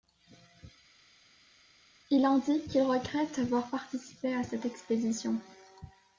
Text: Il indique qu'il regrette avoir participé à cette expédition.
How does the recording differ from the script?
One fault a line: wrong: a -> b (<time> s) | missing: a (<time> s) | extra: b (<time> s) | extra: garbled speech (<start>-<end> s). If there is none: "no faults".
no faults